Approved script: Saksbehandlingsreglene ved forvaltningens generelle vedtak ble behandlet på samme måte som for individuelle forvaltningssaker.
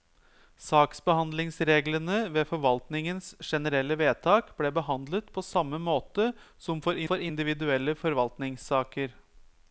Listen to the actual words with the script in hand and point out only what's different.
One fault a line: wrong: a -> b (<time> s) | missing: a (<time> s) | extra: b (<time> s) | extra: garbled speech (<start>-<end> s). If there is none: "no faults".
extra: for (7.1 s)